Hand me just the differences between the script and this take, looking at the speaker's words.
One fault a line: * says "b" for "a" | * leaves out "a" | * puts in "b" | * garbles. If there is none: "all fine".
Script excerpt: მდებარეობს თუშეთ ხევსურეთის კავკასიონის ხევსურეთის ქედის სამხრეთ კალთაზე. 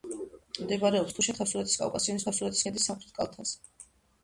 all fine